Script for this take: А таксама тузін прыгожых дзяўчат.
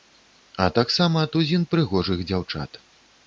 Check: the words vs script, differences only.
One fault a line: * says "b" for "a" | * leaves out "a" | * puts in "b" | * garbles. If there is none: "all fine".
all fine